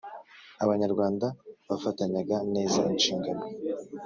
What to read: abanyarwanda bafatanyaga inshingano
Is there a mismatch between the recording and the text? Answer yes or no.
yes